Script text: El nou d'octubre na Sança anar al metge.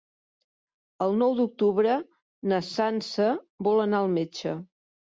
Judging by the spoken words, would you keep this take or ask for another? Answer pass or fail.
fail